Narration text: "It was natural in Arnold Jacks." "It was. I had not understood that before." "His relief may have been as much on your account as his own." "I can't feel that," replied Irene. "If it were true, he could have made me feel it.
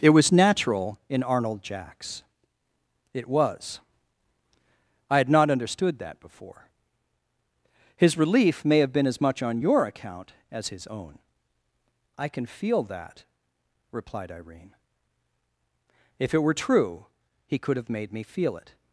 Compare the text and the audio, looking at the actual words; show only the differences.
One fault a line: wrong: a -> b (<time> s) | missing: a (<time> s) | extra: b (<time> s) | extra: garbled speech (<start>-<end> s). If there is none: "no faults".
wrong: can't -> can (12.3 s)